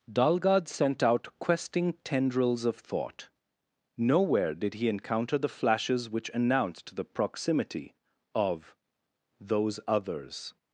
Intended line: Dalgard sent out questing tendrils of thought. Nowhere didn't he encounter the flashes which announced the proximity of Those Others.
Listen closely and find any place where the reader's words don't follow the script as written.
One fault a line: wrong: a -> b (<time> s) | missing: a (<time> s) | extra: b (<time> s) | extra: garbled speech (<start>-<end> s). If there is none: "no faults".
wrong: didn't -> did (4.5 s)